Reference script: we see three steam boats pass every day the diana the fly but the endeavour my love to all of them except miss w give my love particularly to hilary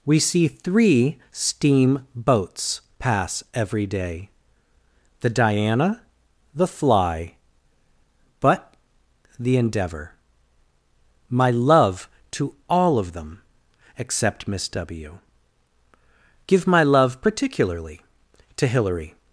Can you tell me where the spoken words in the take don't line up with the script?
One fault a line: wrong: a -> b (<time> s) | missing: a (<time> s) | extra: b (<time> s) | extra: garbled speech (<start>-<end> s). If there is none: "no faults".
no faults